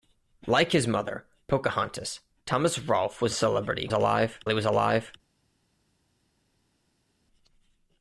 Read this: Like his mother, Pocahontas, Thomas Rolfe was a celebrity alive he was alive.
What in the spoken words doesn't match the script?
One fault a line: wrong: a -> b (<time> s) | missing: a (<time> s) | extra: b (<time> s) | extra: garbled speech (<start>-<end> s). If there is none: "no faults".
no faults